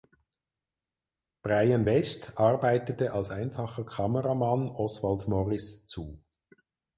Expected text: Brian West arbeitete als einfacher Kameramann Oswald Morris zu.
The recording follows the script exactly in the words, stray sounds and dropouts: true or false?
true